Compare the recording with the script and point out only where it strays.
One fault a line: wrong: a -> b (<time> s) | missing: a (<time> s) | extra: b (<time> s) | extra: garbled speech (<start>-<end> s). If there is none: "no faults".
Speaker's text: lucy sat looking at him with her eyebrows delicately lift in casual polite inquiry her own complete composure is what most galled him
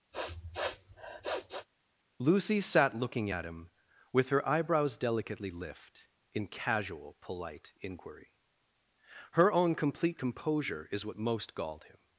no faults